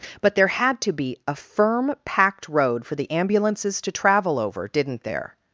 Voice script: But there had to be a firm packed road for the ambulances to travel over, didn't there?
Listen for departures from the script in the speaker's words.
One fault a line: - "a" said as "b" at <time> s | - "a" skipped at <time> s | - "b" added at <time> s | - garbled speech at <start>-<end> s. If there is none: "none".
none